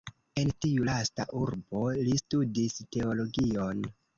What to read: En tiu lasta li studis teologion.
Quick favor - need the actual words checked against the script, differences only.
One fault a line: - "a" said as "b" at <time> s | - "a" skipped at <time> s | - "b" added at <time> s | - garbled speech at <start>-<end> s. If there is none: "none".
- "urbo" added at 1.4 s